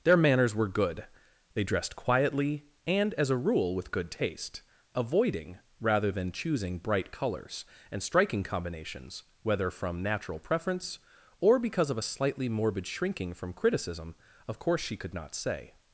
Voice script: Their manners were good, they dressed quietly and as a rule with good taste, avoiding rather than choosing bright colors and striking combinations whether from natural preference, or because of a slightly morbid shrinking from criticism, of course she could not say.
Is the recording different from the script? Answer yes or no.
no